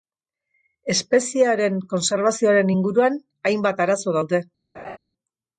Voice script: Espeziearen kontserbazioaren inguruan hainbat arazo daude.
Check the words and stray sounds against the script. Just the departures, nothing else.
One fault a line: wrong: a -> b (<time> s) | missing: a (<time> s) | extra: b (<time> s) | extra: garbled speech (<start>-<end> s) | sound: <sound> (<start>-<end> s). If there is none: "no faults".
sound: laugh (4.7-5.0 s)